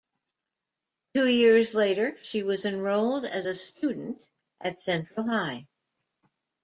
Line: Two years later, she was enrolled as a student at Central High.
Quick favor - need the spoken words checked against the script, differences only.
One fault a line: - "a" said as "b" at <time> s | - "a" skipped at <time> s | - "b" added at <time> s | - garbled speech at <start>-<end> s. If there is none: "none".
none